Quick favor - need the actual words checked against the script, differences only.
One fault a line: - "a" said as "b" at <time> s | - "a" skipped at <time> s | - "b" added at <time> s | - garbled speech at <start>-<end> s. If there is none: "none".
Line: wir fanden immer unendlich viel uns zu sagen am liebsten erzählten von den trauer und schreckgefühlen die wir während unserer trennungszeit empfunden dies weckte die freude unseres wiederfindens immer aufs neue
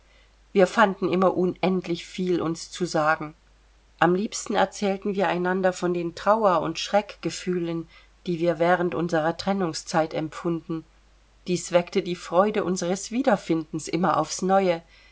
- "wir einander" added at 5.1 s